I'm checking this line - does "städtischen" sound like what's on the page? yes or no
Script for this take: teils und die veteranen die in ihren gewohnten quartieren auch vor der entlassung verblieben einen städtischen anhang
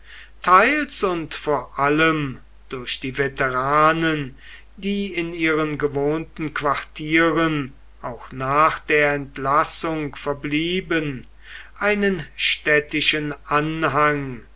yes